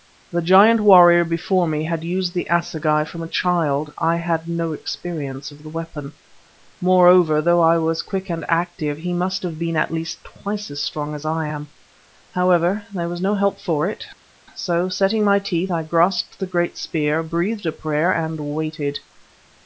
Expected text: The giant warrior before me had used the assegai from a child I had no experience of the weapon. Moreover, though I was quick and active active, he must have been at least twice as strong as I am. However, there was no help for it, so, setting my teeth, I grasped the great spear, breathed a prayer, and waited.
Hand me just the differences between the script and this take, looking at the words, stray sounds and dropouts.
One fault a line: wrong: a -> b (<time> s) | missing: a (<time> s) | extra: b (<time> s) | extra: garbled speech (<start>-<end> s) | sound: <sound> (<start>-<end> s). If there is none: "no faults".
missing: active (9.0 s)